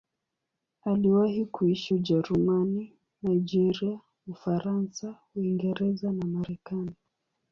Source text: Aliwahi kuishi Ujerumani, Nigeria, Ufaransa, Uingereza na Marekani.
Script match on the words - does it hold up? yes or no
yes